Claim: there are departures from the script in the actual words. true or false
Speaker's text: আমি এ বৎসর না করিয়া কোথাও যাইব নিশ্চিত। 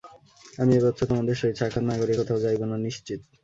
true